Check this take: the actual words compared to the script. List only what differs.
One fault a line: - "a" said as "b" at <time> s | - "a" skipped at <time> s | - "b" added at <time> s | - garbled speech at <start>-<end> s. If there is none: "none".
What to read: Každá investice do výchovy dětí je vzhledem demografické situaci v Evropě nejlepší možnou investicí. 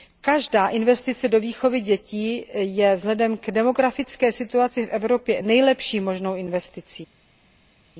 - "k" added at 3.4 s